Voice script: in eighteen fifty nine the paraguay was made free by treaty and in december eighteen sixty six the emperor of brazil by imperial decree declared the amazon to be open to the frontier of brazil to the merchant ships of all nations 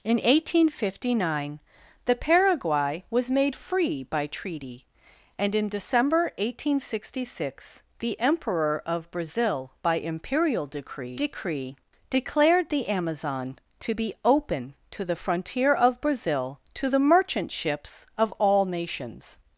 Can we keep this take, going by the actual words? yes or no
no